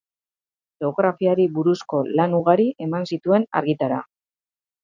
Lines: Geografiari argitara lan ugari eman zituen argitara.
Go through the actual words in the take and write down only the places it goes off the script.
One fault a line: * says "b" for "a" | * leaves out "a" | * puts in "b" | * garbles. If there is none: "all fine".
* says "buruzko" for "argitara"